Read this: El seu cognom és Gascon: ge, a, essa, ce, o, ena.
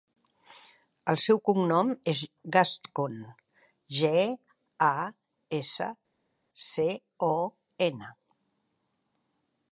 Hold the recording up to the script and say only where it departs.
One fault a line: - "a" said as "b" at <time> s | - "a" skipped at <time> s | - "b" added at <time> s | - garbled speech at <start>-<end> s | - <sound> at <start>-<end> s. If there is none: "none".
none